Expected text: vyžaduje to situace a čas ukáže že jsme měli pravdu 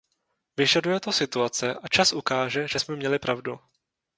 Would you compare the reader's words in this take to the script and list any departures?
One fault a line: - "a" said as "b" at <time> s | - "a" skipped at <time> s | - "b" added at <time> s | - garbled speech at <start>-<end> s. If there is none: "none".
none